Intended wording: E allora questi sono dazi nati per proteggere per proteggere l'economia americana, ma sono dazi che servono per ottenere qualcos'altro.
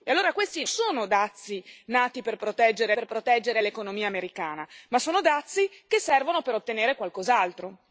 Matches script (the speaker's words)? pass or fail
pass